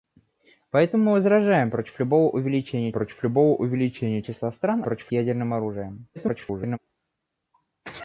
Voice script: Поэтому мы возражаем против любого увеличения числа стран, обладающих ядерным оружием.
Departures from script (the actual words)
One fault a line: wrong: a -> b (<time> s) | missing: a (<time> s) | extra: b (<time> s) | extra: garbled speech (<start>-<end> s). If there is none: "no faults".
extra: против любого увеличения (2.9 s)
wrong: обладающих -> против (4.8 s)
extra: garbled speech (6.2-6.8 s)